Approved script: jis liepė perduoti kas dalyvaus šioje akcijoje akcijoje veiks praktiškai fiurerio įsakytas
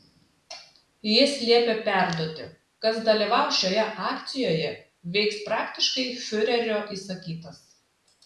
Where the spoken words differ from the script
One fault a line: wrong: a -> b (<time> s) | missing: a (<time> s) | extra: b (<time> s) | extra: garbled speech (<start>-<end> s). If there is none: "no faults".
missing: akcijoje (4.7 s)